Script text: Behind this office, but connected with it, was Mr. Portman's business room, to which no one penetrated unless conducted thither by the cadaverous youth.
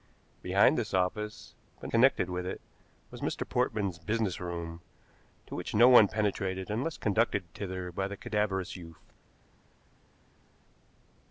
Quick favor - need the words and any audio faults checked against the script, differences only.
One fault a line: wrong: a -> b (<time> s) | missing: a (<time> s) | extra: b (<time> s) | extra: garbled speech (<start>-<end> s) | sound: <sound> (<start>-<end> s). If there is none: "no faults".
no faults